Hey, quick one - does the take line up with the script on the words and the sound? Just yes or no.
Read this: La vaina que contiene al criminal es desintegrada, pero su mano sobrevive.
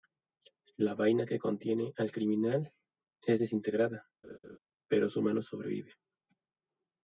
no